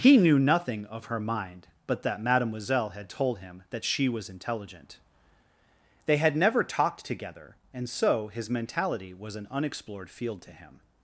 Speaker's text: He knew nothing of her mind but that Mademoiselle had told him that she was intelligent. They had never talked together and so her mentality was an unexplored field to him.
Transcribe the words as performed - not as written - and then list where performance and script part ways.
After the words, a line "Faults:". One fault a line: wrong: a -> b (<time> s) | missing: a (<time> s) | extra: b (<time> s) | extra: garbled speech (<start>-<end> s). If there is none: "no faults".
He knew nothing of her mind but that Mademoiselle had told him that she was intelligent. They had never talked together and so his mentality was an unexplored field to him.
Faults:
wrong: her -> his (8.3 s)